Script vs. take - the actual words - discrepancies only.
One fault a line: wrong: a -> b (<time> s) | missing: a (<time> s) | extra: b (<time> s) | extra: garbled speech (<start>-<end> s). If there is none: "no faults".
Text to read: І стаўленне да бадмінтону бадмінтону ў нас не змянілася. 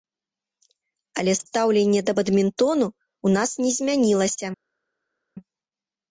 wrong: І -> Але (1.2 s)
missing: бадмінтону (2.9 s)